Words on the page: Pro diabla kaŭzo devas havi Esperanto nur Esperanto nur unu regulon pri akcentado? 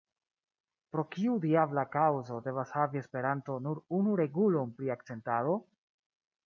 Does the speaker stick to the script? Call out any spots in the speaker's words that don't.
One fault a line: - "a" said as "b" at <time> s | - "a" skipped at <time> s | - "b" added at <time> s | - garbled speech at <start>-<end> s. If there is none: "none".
- "kiu" added at 1.1 s
- "Esperanto nur" skipped at 3.9 s